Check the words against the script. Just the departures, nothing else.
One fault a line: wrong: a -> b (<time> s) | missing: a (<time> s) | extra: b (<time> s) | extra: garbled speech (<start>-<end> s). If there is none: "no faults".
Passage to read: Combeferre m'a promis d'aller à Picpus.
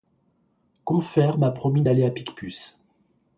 no faults